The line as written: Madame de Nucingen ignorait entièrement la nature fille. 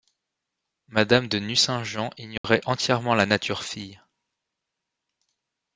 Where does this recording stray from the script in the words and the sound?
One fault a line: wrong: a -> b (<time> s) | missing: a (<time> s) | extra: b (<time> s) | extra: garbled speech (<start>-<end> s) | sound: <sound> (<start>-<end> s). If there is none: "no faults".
sound: dropout (2.4-2.4 s)